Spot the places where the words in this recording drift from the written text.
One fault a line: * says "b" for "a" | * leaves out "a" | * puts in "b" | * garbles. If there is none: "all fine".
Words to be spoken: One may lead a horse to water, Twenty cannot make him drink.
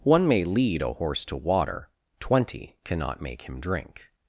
all fine